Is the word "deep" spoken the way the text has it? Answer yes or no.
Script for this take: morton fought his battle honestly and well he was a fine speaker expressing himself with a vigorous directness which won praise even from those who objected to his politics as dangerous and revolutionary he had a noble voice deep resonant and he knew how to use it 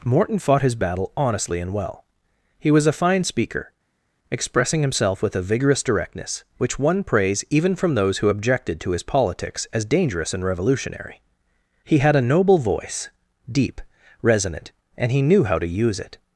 yes